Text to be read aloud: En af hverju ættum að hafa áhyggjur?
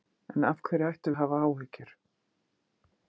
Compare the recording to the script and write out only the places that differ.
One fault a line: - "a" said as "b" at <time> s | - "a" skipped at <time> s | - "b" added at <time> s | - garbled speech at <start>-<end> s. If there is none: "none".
none